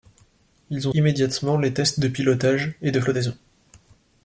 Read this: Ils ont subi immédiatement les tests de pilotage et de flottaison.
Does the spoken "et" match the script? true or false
true